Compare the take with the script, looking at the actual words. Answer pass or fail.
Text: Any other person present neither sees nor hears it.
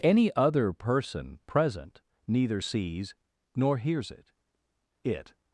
fail